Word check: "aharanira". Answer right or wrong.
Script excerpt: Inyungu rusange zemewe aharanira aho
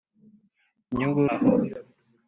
wrong